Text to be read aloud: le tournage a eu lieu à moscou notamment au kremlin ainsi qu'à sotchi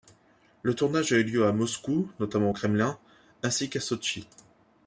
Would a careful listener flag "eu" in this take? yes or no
no